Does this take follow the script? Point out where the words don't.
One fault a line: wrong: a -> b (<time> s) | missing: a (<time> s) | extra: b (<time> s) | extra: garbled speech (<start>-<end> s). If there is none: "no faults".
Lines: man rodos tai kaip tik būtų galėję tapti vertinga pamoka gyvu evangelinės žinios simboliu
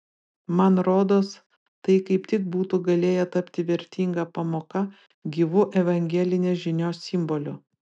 no faults